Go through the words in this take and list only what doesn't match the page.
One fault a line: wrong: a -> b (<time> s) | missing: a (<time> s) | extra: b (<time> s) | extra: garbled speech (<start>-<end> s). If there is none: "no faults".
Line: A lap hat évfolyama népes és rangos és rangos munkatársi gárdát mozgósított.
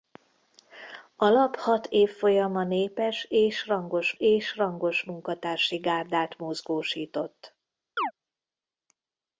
no faults